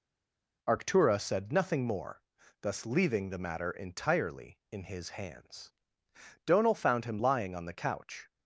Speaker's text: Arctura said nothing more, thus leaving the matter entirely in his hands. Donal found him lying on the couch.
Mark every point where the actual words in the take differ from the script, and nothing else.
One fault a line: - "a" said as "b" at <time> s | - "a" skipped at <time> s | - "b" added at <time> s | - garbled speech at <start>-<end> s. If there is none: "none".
none